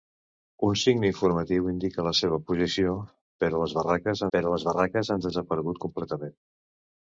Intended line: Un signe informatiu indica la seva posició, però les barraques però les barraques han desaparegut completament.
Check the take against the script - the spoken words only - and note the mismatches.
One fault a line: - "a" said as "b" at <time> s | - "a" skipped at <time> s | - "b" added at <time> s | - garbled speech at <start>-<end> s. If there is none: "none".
none